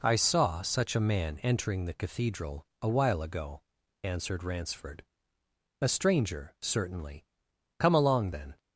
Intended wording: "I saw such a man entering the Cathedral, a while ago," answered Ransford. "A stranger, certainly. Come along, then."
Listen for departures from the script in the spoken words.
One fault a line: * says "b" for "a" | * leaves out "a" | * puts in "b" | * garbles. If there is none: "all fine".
all fine